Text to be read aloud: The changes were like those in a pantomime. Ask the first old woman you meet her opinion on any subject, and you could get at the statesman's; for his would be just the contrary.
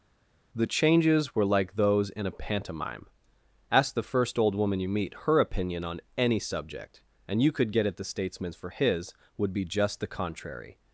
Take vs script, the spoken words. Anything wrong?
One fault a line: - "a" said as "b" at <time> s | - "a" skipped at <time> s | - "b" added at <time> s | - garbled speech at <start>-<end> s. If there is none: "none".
none